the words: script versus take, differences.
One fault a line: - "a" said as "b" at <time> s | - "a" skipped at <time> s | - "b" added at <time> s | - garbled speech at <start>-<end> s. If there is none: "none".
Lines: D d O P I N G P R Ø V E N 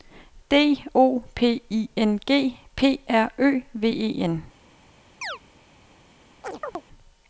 - "d" skipped at 0.8 s